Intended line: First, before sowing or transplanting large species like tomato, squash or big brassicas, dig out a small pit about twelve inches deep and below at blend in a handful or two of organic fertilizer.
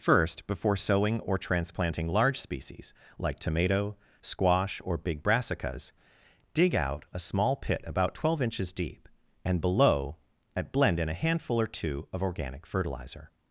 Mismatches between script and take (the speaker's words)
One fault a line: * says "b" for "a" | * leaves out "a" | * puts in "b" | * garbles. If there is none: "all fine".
all fine